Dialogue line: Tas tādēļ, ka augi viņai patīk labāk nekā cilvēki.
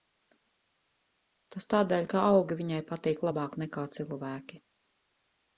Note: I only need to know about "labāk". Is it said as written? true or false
true